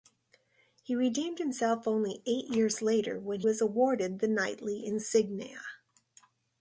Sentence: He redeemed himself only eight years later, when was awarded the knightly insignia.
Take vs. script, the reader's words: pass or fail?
pass